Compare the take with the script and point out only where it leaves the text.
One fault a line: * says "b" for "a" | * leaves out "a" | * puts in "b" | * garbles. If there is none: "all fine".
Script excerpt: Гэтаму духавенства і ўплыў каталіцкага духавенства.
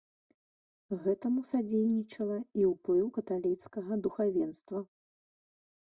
* says "садзейнічала" for "духавенства"